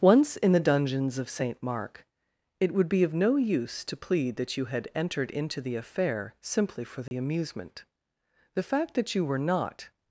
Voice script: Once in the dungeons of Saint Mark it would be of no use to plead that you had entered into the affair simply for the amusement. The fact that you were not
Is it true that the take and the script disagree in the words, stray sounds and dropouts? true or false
true